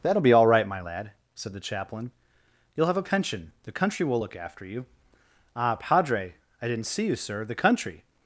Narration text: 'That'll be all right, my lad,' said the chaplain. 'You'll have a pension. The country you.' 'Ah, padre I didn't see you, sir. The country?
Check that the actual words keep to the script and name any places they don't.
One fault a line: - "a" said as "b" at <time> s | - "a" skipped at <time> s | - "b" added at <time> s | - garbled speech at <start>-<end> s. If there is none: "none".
- "will look after" added at 4.0 s